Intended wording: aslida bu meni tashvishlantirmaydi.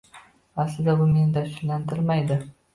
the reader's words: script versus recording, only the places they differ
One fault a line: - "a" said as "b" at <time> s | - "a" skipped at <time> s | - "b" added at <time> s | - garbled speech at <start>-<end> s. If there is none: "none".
none